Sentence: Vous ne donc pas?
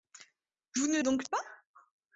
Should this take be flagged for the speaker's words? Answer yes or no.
no